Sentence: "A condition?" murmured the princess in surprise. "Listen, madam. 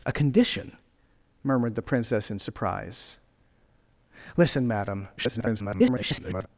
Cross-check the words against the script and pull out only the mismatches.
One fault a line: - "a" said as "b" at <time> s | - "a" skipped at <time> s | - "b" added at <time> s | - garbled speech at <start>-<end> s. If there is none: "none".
- garbled speech at 5.2-6.5 s